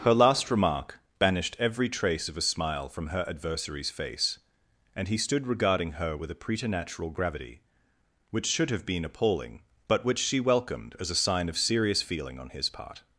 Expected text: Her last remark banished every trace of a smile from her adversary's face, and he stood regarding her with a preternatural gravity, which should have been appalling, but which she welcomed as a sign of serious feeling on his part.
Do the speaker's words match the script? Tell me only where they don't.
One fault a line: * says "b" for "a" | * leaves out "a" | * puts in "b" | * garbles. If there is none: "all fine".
all fine